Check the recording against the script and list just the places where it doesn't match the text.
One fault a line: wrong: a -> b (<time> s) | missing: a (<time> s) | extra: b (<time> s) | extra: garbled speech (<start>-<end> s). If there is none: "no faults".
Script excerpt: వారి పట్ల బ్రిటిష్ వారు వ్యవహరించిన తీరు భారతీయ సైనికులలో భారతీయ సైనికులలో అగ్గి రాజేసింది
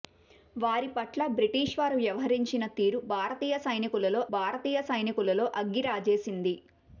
no faults